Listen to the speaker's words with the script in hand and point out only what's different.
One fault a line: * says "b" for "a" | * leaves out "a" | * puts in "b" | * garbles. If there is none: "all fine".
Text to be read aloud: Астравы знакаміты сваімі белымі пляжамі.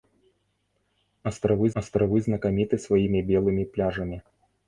* puts in "астравы"